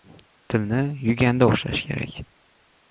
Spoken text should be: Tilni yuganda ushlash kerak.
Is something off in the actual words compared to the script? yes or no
no